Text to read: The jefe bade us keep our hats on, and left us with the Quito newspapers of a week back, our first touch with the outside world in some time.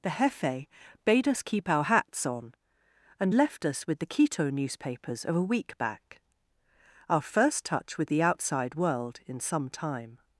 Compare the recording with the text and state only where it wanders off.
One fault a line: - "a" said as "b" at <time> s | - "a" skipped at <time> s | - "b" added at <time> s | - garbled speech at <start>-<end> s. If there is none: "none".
none